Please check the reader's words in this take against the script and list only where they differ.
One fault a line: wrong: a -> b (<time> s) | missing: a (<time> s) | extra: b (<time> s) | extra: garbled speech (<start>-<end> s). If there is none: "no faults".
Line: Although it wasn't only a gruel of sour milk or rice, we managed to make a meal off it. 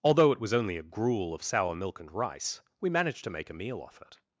wrong: wasn't -> was (0.4 s)
wrong: or -> and (2.0 s)